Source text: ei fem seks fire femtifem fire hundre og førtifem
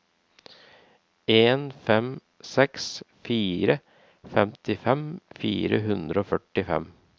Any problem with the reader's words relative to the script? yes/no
yes